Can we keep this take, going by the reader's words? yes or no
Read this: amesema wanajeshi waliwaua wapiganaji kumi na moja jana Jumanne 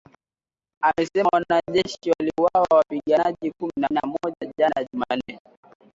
no